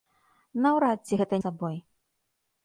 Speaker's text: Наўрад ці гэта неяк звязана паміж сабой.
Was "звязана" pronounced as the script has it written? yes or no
no